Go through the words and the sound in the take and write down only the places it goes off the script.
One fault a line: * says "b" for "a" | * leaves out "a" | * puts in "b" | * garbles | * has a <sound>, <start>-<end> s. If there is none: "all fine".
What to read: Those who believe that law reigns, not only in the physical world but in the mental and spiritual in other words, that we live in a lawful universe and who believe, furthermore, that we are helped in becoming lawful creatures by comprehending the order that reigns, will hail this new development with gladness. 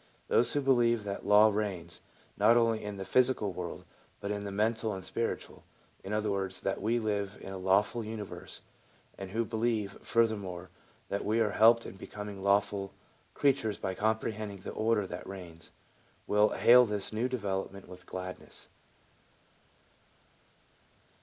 all fine